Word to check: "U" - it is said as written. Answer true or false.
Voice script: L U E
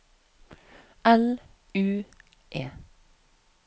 true